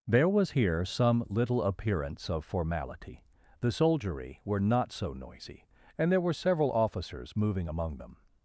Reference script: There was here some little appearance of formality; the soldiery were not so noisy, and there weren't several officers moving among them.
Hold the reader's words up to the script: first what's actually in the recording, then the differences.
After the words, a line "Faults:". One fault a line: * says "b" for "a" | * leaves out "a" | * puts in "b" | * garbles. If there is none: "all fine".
There was here some little appearance of formality; the soldiery were not so noisy, and there were several officers moving among them.
Faults:
* says "were" for "weren't"